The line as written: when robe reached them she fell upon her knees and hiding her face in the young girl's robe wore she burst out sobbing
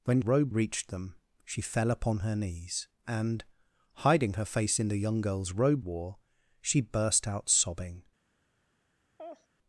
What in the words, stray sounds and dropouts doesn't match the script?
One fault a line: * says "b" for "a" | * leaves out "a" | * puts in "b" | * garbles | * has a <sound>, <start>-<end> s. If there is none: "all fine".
* has a laugh, 9.2-9.5 s